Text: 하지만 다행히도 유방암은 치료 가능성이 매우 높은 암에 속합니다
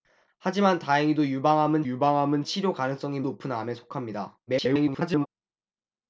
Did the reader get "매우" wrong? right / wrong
wrong